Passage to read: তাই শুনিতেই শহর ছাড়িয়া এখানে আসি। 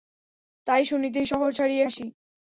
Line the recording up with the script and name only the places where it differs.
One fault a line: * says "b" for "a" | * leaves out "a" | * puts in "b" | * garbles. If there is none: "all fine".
* leaves out "এখানে"